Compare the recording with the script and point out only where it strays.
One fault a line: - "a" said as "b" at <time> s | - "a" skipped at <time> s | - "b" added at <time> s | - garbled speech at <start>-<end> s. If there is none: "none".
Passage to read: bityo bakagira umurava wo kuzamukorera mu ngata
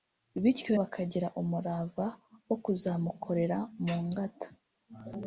none